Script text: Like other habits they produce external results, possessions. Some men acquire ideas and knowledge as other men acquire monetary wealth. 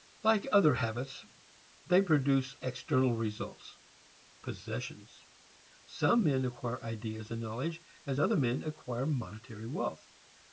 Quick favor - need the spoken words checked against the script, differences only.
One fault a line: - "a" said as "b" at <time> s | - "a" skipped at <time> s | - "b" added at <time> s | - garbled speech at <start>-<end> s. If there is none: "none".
none